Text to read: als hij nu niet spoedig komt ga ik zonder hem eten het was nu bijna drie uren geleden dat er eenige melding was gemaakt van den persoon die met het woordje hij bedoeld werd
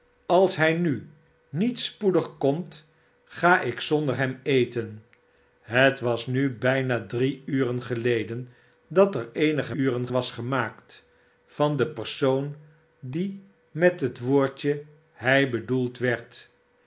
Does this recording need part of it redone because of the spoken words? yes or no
yes